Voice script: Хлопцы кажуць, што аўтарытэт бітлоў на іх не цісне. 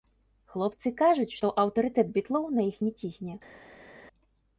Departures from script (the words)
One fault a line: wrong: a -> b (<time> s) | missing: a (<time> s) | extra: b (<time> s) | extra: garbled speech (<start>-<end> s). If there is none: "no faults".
no faults